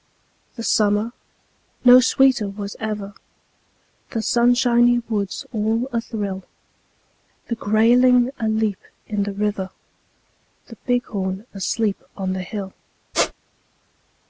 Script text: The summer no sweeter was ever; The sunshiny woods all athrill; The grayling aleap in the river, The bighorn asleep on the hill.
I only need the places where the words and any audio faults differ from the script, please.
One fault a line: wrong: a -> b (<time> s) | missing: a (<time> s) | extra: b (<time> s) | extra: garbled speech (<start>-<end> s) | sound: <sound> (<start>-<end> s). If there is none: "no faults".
sound: squeak (13.1-13.3 s)